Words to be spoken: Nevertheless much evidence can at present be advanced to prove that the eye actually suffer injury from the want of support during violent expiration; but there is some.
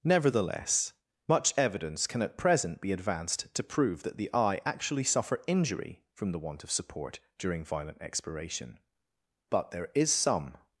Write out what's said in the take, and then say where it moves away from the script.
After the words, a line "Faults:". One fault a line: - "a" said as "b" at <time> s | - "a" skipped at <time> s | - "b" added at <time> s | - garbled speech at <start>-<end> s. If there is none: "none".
Nevertheless much evidence can at present be advanced to prove that the eye actually suffer injury from the want of support during violent expiration; but there is some.
Faults:
none